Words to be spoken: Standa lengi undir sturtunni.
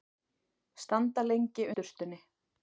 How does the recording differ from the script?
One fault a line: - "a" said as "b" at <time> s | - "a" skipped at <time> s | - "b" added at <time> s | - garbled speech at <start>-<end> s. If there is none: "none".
- "undir" skipped at 1.7 s